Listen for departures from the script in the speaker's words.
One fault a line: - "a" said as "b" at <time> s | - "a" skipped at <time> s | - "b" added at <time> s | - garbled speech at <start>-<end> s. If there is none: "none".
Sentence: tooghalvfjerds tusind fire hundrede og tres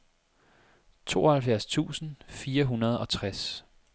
none